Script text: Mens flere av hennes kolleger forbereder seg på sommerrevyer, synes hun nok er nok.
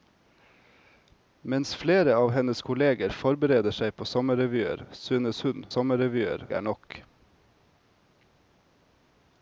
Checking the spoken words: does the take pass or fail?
fail